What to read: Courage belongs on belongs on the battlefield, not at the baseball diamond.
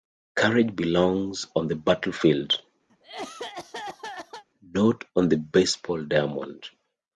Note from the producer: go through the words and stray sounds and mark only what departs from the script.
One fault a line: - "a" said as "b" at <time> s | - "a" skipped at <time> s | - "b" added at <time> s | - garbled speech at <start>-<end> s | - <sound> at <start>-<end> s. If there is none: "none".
- "belongs on" skipped at 1.7 s
- cough at 2.9-4.4 s
- "at" said as "on" at 5.2 s